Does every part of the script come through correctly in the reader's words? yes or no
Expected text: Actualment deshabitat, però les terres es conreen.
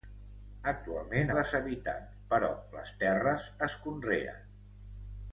yes